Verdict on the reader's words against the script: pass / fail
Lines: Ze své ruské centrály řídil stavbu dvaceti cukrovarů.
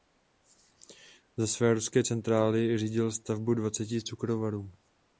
pass